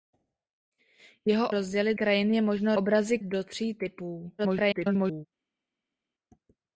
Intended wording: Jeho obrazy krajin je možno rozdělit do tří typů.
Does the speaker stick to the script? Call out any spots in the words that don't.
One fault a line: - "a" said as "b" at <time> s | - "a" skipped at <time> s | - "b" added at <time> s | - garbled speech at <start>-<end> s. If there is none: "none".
- "obrazy" said as "rozdělit" at 1.5 s
- "rozdělit" said as "obrazy" at 2.7 s
- garbled speech at 4.4-5.3 s